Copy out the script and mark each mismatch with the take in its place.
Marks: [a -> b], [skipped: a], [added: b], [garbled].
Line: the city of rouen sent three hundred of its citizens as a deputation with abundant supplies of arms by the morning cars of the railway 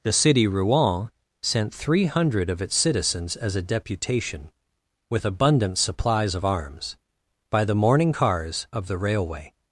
the city [skipped: of] rouen sent three hundred of its citizens as a deputation with abundant supplies of arms by the morning cars of the railway